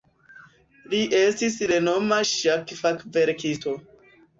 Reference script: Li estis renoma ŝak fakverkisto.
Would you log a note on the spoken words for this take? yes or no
no